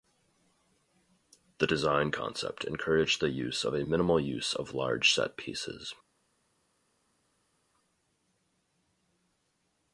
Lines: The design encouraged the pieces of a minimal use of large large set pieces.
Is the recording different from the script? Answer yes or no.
yes